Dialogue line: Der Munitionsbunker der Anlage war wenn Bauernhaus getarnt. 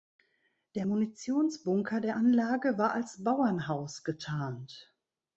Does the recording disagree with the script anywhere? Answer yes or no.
yes